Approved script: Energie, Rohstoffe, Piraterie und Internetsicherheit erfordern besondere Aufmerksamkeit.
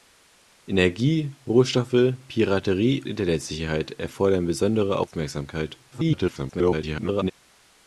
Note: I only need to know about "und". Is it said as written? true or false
false